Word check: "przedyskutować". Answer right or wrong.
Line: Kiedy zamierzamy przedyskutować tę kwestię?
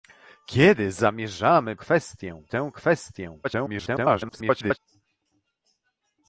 wrong